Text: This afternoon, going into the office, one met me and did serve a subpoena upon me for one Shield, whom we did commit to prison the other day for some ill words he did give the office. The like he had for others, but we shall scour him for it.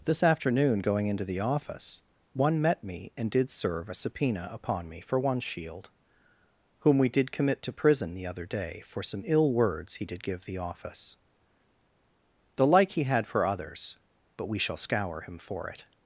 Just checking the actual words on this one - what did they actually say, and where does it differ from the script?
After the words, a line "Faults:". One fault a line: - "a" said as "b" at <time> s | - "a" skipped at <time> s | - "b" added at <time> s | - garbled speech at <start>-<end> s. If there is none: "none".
This afternoon, going into the office, one met me and did serve a subpoena upon me for one Shield, whom we did commit to prison the other day for some ill words he did give the office. The like he had for others, but we shall scour him for it.
Faults:
none